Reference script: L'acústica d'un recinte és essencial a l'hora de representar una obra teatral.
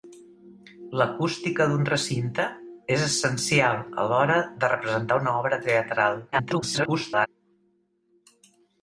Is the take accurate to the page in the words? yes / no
no